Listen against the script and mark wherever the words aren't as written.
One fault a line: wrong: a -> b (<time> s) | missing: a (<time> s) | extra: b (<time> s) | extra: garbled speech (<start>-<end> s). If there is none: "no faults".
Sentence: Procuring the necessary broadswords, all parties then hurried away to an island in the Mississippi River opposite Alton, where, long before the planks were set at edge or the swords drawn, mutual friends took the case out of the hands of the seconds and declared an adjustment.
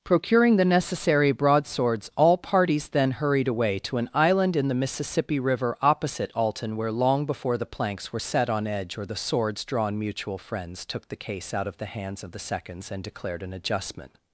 wrong: at -> on (8.5 s)